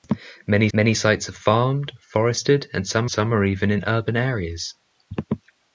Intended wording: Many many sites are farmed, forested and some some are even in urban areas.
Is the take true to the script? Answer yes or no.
yes